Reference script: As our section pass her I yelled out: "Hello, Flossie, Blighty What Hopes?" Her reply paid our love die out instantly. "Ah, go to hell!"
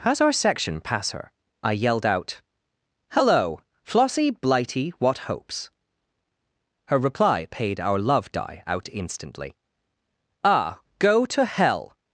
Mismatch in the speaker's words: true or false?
false